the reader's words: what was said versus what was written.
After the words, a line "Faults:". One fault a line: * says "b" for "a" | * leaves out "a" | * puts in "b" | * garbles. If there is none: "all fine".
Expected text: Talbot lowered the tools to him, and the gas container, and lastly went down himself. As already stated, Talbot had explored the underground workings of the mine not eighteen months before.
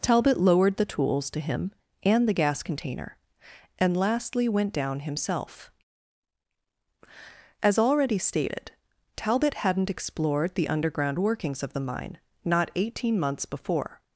Talbot lowered the tools to him, and the gas container, and lastly went down himself. As already stated, Talbot hadn't explored the underground workings of the mine not eighteen months before.
Faults:
* says "hadn't" for "had"